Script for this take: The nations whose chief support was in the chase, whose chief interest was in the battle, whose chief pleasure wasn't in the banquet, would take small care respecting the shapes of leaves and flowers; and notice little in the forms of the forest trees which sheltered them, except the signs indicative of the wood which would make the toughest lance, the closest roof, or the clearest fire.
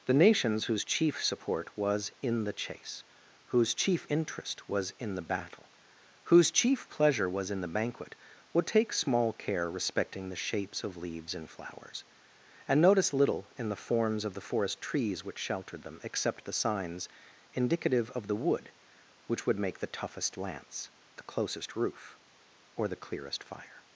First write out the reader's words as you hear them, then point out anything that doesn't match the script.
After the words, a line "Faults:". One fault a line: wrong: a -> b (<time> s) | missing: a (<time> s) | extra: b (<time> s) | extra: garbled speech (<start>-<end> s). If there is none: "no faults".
The nations whose chief support was in the chase, whose chief interest was in the battle, whose chief pleasure was in the banquet, would take small care respecting the shapes of leaves and flowers; and notice little in the forms of the forest trees which sheltered them, except the signs indicative of the wood which would make the toughest lance, the closest roof, or the clearest fire.
Faults:
wrong: wasn't -> was (7.3 s)